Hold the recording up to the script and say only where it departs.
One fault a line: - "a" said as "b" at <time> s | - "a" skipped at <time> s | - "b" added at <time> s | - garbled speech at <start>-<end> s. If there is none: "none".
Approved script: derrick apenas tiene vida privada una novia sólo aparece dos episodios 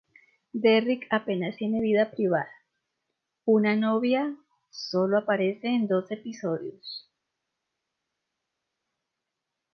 - "en" added at 5.7 s